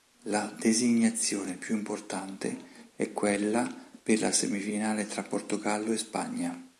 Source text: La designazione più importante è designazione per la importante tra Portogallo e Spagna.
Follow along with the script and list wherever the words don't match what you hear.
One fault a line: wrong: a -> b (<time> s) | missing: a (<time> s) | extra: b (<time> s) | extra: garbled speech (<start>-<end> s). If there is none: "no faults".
wrong: designazione -> quella (3.1 s)
wrong: importante -> semifinale (4.3 s)